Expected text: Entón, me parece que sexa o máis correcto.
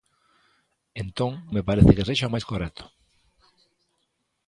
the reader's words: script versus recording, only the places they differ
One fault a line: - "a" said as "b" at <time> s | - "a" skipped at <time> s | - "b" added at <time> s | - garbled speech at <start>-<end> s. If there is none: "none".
none